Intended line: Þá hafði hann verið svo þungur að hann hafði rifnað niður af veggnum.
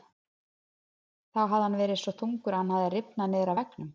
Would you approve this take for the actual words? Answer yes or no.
yes